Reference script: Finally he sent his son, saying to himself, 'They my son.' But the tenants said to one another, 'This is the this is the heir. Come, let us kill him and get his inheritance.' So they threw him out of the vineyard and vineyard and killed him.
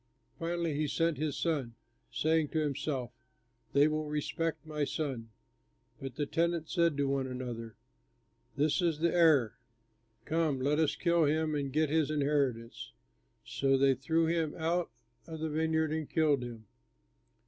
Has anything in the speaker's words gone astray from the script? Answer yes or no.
yes